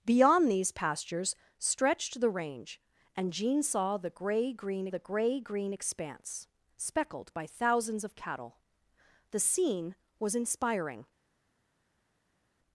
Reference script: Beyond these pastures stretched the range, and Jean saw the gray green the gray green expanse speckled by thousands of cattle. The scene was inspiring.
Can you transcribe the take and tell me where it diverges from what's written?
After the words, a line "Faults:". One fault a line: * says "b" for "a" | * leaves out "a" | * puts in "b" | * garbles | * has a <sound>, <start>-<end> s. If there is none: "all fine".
Beyond these pastures stretched the range, and Jean saw the gray green the gray green expanse speckled by thousands of cattle. The scene was inspiring.
Faults:
all fine